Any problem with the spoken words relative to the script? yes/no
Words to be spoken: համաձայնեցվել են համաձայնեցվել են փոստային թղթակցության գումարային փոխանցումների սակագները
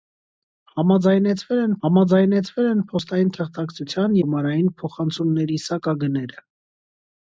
no